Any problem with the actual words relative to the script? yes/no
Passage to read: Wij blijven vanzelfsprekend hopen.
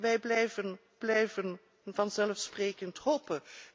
yes